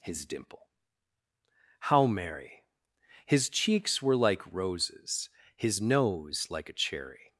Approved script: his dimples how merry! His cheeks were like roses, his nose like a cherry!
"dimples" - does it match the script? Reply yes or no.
no